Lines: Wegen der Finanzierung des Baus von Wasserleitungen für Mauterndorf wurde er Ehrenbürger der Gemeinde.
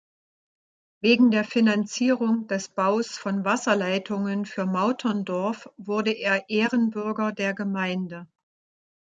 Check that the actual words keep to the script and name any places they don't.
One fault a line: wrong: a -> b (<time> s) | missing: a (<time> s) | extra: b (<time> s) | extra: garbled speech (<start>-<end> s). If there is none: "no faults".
no faults